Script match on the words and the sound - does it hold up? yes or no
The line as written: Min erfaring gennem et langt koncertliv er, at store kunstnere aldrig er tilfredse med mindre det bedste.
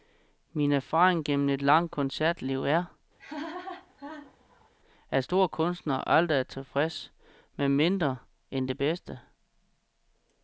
no